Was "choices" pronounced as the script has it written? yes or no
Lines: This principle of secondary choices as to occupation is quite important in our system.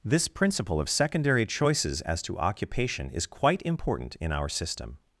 yes